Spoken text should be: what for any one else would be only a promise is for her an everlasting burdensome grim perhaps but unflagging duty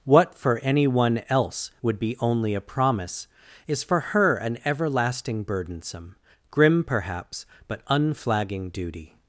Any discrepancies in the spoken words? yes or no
no